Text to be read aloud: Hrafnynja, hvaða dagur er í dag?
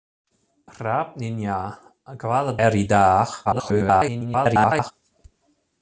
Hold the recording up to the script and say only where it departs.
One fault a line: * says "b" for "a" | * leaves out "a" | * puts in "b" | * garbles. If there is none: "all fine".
* leaves out "dagur"
* garbles